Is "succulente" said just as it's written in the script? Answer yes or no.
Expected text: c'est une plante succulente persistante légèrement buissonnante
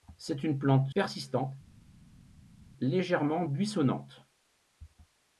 no